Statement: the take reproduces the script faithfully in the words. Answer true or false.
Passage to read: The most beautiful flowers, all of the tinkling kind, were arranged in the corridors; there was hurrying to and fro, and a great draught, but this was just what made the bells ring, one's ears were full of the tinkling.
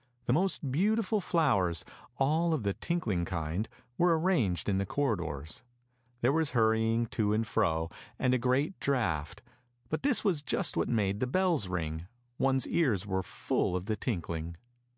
true